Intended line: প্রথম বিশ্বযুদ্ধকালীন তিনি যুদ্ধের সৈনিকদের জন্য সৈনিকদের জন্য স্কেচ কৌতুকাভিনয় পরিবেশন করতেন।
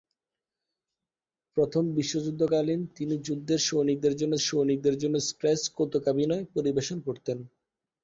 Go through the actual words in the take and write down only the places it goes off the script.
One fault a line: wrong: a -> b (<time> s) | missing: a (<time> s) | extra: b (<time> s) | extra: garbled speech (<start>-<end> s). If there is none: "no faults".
no faults